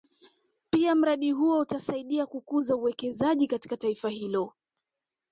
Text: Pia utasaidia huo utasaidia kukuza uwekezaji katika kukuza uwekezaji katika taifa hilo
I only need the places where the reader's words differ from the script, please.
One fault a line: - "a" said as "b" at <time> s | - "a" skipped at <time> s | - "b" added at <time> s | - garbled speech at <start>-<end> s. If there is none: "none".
- "utasaidia" said as "mradi" at 0.9 s
- "kukuza uwekezaji katika" skipped at 3.8 s